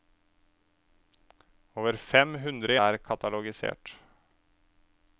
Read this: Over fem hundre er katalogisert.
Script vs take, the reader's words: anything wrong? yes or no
no